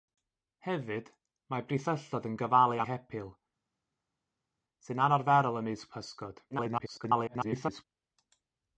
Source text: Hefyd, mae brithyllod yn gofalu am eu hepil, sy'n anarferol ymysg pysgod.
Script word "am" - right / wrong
wrong